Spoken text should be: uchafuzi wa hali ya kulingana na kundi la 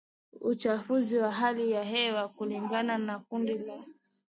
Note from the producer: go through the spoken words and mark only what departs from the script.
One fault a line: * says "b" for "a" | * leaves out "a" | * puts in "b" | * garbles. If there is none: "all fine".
* puts in "hewa"